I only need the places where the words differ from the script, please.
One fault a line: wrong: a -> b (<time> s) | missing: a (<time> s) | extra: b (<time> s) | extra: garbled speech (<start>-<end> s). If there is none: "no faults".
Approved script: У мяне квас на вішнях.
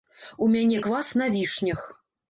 no faults